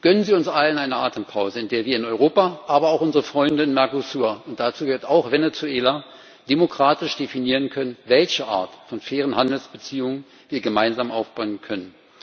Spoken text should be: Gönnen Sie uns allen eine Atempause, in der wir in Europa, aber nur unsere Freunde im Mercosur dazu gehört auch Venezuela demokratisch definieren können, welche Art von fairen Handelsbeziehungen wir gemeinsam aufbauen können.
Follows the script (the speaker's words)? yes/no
no